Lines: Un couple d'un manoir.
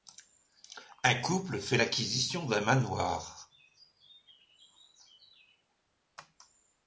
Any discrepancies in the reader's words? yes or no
yes